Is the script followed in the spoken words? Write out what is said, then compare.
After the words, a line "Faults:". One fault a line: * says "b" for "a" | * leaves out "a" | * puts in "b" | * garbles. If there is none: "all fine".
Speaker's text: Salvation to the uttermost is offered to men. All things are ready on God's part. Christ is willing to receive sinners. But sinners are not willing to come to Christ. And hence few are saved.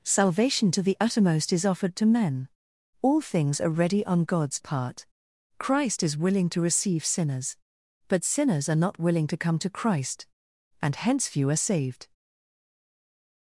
Salvation to the uttermost is offered to men. All things are ready on God's part. Christ is willing to receive sinners. But sinners are not willing to come to Christ. And hence few are saved.
Faults:
all fine